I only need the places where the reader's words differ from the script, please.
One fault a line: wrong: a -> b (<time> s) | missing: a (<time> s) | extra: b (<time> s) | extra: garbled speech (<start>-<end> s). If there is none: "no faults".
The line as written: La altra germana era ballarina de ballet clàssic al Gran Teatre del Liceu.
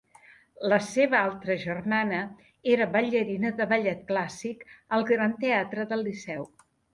extra: seva (0.8 s)